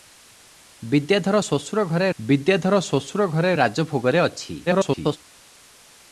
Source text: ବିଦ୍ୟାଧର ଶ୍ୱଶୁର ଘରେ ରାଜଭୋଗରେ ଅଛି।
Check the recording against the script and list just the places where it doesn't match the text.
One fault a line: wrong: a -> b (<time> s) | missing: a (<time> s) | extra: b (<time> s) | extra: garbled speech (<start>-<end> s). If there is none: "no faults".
extra: ବିଦ୍ୟାଧର ଶ୍ୱଶୁର ଘରେ (2.2 s)
extra: garbled speech (4.7-5.2 s)